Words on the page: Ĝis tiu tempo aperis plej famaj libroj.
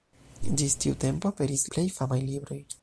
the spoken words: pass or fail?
pass